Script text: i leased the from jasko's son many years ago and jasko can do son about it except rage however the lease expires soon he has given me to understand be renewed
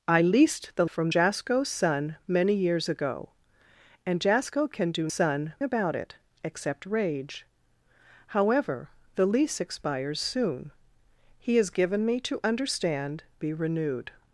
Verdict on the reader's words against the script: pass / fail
pass